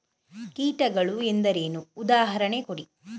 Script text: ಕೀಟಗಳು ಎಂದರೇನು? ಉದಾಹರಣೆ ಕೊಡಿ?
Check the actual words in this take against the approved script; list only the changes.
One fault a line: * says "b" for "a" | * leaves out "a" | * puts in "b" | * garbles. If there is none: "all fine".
all fine